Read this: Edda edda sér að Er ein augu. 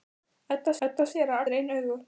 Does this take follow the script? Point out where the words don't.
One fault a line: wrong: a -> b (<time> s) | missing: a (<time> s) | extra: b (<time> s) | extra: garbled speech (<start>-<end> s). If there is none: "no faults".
no faults